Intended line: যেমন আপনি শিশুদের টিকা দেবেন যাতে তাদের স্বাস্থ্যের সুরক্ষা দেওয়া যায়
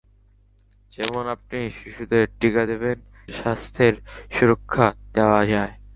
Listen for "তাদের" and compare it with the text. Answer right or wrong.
wrong